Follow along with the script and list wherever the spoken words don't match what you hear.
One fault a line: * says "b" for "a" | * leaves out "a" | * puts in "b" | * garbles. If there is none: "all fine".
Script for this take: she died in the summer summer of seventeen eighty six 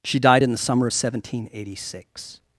* leaves out "summer"